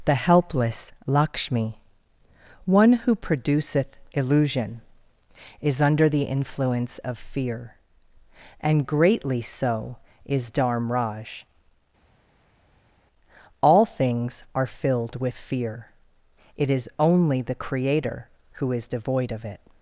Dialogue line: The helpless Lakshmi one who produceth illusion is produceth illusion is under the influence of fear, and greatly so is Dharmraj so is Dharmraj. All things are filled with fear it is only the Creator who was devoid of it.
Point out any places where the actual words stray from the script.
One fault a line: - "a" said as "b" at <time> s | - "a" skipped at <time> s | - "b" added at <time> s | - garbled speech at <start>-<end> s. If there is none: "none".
- "produceth illusion is" skipped at 5.8 s
- "so is Dharmraj" skipped at 11.4 s
- "was" said as "is" at 18.7 s